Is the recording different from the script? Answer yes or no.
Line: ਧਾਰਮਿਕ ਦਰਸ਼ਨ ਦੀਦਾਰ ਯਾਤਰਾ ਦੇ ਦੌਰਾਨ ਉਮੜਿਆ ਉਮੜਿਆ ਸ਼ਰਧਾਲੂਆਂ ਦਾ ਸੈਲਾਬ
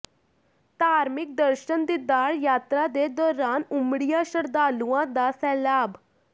yes